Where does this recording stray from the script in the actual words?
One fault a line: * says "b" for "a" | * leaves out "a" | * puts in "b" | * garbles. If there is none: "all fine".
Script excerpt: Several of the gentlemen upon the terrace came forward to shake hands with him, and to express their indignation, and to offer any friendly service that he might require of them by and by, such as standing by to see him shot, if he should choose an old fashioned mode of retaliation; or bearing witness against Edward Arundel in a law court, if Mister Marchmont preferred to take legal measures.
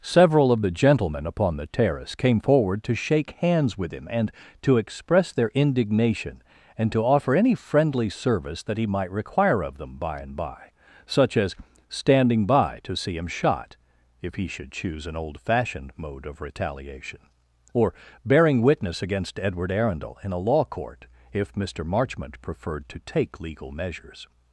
all fine